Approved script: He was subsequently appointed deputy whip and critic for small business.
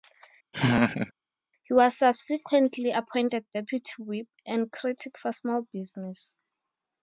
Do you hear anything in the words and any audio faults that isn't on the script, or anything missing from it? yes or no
yes